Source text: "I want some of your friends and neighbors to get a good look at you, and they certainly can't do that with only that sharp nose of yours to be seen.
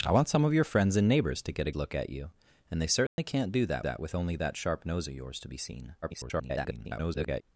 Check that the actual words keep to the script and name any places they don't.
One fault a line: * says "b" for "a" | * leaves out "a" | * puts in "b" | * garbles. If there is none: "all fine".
* leaves out "good"
* puts in "that"
* garbles